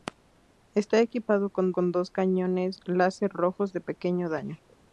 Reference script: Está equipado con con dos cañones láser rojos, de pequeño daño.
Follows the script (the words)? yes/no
yes